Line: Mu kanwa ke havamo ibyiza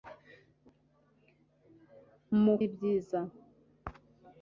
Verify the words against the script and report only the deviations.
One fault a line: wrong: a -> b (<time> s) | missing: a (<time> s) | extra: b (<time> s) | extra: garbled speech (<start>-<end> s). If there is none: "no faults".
missing: kanwa ke havamo (2.5 s)